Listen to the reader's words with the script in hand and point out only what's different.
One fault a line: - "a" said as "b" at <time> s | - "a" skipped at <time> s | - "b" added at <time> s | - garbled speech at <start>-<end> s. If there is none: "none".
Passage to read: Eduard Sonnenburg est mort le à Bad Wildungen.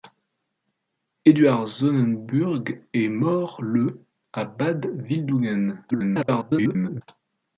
- garbled speech at 5.9-7.0 s